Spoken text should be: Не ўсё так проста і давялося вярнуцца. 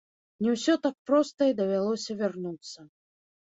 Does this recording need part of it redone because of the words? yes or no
no